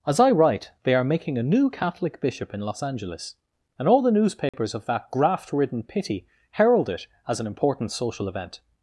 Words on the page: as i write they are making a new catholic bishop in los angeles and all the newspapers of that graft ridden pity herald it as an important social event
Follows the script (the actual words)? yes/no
yes